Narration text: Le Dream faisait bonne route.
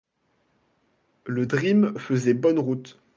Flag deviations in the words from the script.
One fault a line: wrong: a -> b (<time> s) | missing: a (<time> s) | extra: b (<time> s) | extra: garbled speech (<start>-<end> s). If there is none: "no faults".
no faults